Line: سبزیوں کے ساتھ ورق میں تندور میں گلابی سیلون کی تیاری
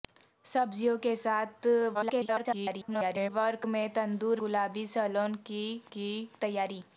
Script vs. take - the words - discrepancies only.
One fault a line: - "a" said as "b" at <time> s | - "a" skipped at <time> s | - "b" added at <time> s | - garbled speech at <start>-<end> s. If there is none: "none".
- garbled speech at 1.9-3.3 s
- "میں" skipped at 4.4 s
- "کی" added at 5.9 s